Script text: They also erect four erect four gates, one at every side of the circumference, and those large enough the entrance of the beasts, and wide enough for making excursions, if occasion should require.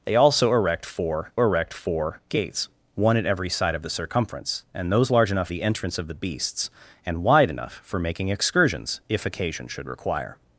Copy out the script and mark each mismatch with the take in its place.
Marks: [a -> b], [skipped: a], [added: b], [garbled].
They also erect four erect four gates, one at every side of the circumference, and those large enough the entrance of the beasts, and wide enough for making excursions, if occasion should require.